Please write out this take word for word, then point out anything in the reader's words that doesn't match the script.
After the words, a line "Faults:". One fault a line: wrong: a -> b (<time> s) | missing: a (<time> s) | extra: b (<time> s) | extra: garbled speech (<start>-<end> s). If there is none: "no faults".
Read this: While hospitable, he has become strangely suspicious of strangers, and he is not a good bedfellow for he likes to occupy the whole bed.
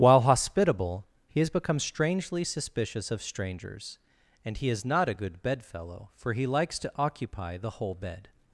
While hospitable, he has become strangely suspicious of strangers, and he is not a good bedfellow for he likes to occupy the whole bed.
Faults:
no faults